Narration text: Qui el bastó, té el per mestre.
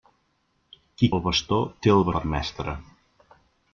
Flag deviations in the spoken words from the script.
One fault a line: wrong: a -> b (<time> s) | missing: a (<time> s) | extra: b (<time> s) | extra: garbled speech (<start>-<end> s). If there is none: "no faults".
no faults